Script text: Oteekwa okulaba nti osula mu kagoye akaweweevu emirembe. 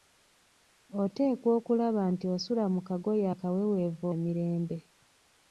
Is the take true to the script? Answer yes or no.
yes